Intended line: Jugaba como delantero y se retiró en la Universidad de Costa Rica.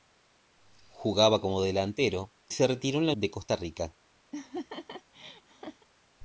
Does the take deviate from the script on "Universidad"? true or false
true